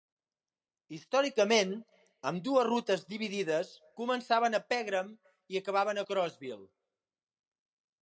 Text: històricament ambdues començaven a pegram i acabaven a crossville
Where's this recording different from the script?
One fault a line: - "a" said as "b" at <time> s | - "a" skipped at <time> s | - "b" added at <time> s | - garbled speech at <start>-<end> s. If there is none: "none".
- "rutes dividides" added at 2.7 s